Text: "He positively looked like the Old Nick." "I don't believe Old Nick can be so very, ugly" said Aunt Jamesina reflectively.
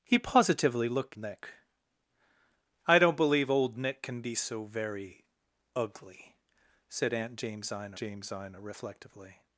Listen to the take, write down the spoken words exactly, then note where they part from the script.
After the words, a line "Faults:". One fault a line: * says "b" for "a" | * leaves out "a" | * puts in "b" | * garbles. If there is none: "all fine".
"He positively looked Nick." "I don't believe Old Nick can be so very, ugly" said Aunt Jamesina Jamesina reflectively.
Faults:
* leaves out "like the Old"
* puts in "Jamesina"